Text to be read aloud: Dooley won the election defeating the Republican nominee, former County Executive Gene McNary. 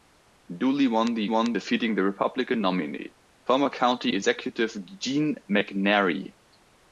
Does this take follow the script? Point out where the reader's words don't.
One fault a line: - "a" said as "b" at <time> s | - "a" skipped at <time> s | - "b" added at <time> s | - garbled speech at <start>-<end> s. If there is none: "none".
- "election" said as "won" at 1.3 s